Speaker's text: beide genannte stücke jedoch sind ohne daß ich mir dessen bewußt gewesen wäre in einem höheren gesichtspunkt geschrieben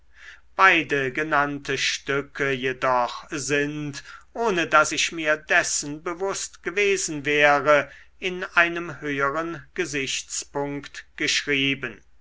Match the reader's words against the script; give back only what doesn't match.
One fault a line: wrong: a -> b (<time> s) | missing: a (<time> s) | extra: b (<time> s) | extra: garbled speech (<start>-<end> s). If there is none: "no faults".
no faults